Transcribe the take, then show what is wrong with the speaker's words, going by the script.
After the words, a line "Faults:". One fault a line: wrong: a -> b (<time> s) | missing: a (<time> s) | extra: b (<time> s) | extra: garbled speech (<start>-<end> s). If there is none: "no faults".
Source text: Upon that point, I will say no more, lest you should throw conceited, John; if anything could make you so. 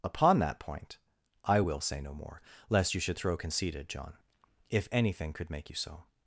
Upon that point, I will say no more, lest you should throw conceited, John; if anything could make you so.
Faults:
no faults